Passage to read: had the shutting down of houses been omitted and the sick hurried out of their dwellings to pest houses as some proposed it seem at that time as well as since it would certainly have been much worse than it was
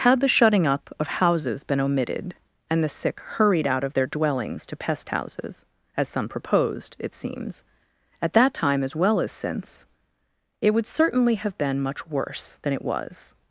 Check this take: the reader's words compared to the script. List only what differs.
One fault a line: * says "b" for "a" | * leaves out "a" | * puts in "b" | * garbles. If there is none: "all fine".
* says "up" for "down"
* says "seems" for "seem"